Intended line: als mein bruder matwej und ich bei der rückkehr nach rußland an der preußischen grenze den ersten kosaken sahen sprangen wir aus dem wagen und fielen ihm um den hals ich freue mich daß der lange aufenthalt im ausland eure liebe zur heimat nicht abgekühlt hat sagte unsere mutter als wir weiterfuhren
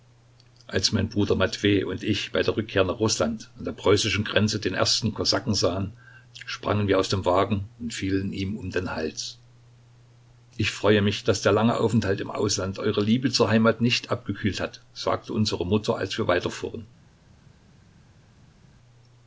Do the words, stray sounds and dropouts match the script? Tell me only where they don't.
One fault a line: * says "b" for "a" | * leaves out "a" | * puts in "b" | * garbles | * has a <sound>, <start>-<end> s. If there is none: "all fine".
all fine